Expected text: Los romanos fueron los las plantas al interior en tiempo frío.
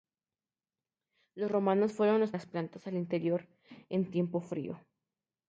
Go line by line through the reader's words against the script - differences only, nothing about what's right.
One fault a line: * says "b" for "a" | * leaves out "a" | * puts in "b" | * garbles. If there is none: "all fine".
all fine